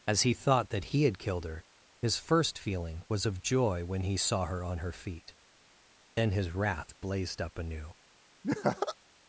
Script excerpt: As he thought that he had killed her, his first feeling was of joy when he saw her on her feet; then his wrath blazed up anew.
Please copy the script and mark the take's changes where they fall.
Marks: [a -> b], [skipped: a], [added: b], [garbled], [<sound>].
As he thought that he had killed her, his first feeling was of joy when he saw her on her feet; then his wrath blazed up anew. [laugh]